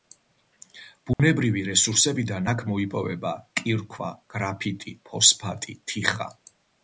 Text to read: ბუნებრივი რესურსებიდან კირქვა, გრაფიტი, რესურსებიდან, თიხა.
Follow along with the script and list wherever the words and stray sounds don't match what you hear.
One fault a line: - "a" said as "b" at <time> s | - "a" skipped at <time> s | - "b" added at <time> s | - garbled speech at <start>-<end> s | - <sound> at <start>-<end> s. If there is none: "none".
- dropout at 1.1-1.2 s
- "აქ მოიპოვება" added at 2.5 s
- "რესურსებიდან" said as "ფოსფატი" at 5.1 s